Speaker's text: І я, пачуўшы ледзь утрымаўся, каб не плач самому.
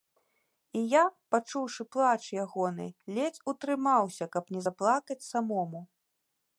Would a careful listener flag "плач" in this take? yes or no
yes